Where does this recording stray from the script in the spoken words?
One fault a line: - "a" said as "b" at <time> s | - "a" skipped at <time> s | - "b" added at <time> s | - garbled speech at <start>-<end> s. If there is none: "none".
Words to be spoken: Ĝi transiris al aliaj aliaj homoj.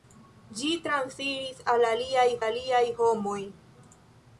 none